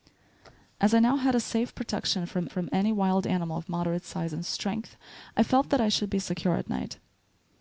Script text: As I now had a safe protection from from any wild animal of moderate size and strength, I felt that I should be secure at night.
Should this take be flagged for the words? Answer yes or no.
no